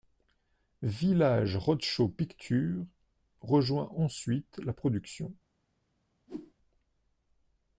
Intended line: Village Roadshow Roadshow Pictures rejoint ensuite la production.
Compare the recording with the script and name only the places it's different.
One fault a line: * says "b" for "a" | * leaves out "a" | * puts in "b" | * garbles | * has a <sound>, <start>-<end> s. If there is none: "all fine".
* leaves out "Roadshow"
* has a whoosh, 6.3-6.5 s